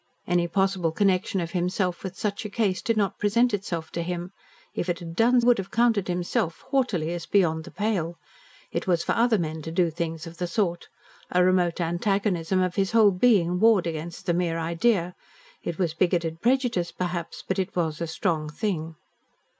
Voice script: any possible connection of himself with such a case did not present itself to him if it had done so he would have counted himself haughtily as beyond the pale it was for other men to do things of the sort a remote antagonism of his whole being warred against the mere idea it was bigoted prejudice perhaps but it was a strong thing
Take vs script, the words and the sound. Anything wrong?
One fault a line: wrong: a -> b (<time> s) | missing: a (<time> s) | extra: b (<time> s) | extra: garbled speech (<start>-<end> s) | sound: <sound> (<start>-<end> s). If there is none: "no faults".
missing: so he (5.4 s)